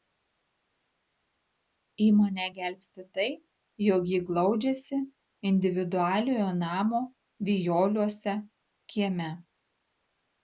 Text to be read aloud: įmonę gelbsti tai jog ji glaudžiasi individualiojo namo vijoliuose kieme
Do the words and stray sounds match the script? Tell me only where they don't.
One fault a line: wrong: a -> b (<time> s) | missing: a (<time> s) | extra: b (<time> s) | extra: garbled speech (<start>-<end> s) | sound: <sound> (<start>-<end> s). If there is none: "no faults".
no faults